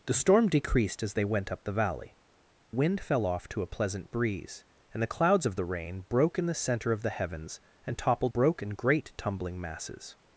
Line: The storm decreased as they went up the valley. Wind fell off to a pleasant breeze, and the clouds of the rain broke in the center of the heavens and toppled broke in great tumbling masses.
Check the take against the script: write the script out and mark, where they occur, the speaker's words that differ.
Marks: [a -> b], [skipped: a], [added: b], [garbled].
The storm decreased as they went up the valley. Wind fell off to a pleasant breeze, and the clouds of the rain broke in the center of the heavens and toppled broke in great tumbling masses.